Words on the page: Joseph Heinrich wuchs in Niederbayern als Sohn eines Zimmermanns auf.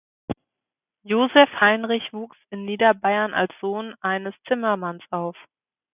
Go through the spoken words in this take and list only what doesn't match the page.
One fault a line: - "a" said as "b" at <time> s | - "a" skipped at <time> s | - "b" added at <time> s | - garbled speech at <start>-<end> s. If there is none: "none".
none